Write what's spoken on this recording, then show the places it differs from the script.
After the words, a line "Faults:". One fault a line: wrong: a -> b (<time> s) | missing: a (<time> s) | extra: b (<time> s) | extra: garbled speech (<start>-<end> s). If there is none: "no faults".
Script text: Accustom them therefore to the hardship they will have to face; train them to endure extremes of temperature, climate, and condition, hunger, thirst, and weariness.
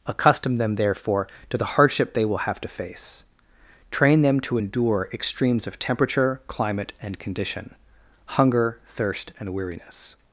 Accustom them therefore to the hardship they will have to face; train them to endure extremes of temperature, climate, and condition, hunger, thirst, and weariness.
Faults:
no faults